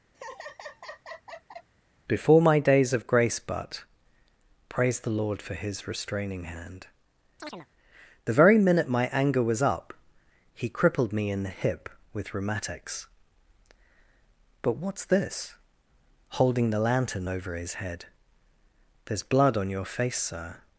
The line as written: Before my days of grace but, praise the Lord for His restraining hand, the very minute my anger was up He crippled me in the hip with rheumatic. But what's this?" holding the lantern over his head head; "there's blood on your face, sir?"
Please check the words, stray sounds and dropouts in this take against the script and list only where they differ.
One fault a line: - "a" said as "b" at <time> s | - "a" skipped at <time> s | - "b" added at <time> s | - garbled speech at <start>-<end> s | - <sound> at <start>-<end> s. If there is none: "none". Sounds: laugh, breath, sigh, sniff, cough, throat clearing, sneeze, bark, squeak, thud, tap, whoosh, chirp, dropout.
- laugh at 0.1-1.7 s
- chirp at 7.4-7.7 s
- "rheumatic" said as "rheumatics" at 12.3 s
- "head" skipped at 18.1 s